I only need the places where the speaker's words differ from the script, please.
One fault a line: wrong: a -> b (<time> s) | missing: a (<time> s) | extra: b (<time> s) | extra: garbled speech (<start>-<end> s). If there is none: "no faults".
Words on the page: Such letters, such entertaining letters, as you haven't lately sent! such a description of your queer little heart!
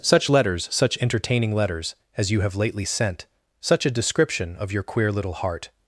wrong: haven't -> have (2.4 s)